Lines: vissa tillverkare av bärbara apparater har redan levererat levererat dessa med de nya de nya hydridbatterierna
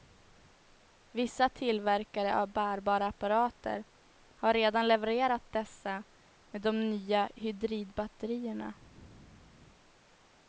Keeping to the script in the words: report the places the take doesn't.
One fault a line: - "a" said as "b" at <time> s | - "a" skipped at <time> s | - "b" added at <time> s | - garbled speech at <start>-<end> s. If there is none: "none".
- "levererat" skipped at 5.5 s
- "de nya" skipped at 7.3 s